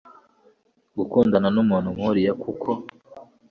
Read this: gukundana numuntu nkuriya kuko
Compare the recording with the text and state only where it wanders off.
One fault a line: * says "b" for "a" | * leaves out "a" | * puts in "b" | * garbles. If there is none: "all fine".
all fine